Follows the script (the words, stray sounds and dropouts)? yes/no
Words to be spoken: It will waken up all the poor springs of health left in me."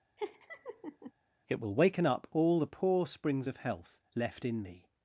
no